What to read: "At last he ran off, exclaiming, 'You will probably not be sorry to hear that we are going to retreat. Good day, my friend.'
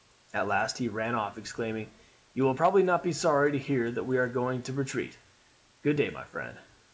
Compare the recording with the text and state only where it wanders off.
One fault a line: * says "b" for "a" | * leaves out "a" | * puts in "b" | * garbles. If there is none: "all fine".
all fine